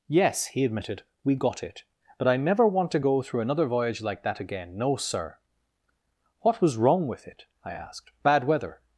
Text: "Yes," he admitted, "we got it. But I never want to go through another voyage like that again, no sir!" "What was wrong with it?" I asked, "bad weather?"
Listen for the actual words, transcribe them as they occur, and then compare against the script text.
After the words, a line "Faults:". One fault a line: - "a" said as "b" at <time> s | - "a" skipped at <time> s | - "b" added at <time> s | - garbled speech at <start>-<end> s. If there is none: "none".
"Yes," he admitted, "we got it. But I never want to go through another voyage like that again, no sir!" "What was wrong with it?" I asked, "bad weather?"
Faults:
none